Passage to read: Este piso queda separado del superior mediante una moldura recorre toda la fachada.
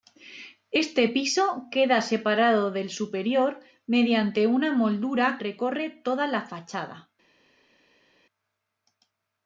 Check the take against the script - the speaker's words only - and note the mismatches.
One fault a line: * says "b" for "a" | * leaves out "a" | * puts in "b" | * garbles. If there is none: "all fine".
all fine